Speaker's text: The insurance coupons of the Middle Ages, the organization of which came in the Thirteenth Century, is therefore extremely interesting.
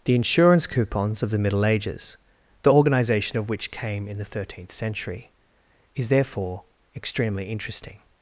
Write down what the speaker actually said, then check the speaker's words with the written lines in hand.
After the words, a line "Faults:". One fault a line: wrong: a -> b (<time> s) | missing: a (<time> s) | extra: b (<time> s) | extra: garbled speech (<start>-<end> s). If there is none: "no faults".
The insurance coupons of the Middle Ages, the organization of which came in the Thirteenth Century, is therefore extremely interesting.
Faults:
no faults